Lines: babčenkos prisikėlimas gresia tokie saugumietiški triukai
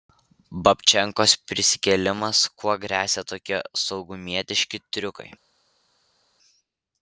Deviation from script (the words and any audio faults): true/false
true